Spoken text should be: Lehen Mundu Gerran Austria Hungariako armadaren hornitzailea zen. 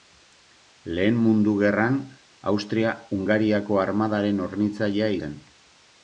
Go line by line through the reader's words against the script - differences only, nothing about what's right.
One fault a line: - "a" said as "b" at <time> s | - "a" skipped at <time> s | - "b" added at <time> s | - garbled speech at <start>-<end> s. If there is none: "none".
none